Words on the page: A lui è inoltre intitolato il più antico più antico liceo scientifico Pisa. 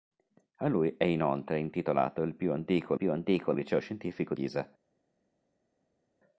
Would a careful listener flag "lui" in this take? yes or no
no